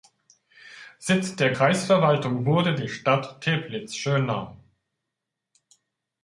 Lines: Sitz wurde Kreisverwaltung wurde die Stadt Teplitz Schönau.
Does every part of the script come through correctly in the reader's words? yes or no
no